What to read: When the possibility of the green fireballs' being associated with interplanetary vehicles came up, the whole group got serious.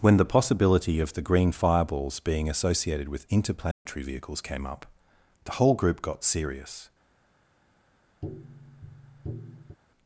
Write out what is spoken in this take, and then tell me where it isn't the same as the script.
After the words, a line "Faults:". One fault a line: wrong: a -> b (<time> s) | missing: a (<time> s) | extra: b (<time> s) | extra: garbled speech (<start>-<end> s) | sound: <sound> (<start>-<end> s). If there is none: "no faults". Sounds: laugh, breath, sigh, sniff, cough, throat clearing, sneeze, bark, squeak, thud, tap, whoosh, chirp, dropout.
When the possibility of the green fireballs' being associated with interplanetary vehicles came up, the whole group got serious.
Faults:
sound: dropout (3.7-3.9 s)
sound: tap (8.2-9.8 s)